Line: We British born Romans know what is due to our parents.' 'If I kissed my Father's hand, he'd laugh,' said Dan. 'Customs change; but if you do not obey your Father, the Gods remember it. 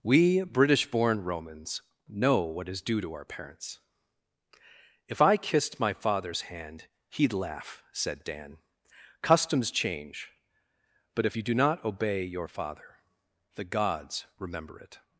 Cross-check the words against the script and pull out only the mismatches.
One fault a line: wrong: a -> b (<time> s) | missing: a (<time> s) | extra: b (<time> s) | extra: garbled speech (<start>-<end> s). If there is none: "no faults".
no faults